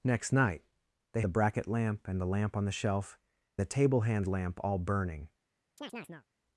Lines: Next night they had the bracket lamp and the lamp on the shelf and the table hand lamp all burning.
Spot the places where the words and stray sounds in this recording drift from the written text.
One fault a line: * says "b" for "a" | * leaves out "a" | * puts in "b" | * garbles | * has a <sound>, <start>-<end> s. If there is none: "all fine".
* leaves out "had"
* leaves out "and"
* has a chirp, 5.8-6.3 s